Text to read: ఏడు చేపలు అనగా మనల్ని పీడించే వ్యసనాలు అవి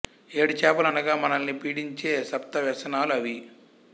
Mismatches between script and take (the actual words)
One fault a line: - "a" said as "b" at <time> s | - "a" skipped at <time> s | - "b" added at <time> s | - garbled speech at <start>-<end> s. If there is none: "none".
- "సప్త" added at 2.3 s